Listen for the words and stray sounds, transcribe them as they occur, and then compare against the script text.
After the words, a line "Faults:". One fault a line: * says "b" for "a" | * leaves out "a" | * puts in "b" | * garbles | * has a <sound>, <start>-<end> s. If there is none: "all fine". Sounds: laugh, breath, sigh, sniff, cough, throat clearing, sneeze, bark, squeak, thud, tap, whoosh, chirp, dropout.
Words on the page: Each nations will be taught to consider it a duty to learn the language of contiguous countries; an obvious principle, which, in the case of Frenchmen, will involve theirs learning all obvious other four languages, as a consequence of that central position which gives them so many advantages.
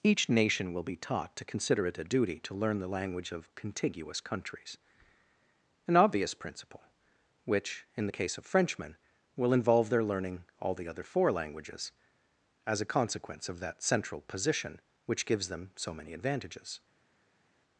Each nation will be taught to consider it a duty to learn the language of contiguous countries; an obvious principle, which, in the case of Frenchmen, will involve their learning all the other four languages, as a consequence of that central position which gives them so many advantages.
Faults:
* says "nation" for "nations"
* says "their" for "theirs"
* says "the" for "obvious"